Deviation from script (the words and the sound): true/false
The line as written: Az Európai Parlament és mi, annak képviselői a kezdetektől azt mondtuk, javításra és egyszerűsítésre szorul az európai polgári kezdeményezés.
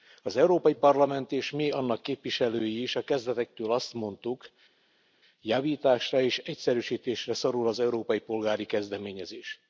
true